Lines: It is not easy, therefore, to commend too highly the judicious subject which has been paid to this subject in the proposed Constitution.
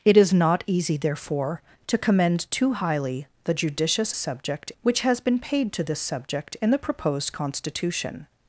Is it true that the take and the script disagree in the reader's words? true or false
false